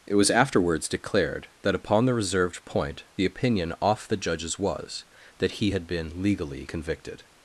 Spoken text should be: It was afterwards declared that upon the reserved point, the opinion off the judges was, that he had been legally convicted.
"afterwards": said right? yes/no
yes